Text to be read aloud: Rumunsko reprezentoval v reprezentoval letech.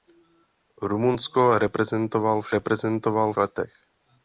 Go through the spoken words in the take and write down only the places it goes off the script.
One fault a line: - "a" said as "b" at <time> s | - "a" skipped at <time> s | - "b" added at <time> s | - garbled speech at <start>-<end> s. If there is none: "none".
none